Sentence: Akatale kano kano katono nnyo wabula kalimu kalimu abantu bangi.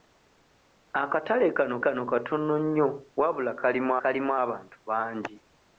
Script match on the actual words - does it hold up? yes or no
yes